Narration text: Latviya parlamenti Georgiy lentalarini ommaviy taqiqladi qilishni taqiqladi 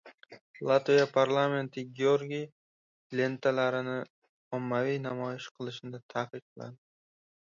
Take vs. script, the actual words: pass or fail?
fail